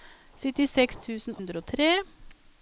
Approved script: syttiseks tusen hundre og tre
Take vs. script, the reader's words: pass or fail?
pass